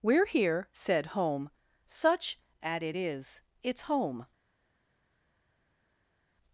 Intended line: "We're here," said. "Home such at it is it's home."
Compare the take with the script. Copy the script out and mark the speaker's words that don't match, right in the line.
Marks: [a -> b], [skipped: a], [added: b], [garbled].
"We're here," said. "Home such at it is it's home."